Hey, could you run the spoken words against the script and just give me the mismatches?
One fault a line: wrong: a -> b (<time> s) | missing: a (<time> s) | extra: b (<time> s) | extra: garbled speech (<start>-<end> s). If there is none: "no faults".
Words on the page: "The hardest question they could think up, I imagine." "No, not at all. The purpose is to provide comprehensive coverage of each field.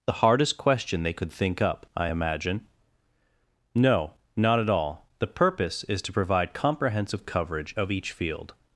no faults